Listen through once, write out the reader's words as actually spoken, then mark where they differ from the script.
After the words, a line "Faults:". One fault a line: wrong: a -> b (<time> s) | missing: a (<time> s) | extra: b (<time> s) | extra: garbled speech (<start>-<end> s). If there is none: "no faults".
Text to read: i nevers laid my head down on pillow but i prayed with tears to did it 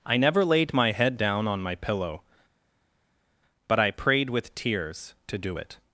i never laid my head down on my pillow but i prayed with tears to do it
Faults:
wrong: nevers -> never (0.2 s)
extra: my (1.6 s)
wrong: did -> do (5.4 s)